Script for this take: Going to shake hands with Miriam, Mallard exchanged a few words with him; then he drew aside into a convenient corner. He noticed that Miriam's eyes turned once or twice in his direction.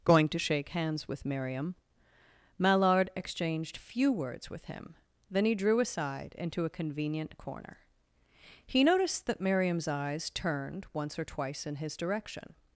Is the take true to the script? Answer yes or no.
no